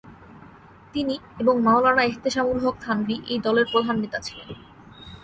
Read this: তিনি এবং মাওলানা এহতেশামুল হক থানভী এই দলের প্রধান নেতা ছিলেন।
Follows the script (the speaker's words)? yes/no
yes